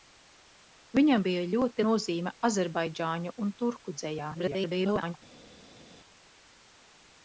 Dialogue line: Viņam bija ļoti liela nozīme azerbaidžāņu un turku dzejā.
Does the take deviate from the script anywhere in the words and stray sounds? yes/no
yes